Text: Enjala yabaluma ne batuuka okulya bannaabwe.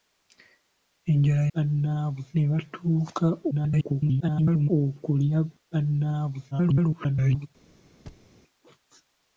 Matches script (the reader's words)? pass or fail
fail